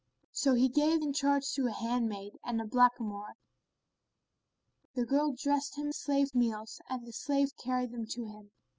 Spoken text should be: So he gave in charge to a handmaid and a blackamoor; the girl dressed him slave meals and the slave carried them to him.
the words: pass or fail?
pass